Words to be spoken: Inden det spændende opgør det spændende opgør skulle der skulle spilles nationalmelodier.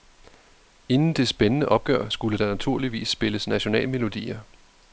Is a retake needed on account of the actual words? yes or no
yes